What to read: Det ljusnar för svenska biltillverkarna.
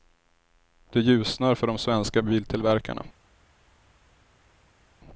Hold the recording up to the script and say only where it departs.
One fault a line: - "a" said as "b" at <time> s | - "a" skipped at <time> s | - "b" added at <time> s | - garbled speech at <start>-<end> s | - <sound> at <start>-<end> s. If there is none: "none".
- "de" added at 1.7 s